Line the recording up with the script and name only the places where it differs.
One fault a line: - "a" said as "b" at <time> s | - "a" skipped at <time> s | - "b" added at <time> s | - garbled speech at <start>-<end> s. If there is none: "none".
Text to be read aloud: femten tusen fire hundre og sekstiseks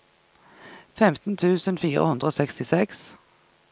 none